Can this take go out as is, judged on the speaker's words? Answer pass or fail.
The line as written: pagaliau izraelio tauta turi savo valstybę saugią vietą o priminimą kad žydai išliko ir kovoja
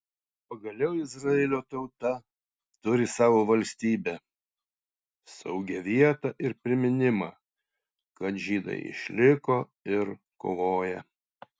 fail